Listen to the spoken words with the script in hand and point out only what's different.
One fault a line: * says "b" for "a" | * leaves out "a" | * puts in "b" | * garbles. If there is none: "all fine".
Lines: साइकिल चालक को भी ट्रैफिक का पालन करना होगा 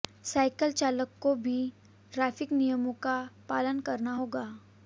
* puts in "नियमों"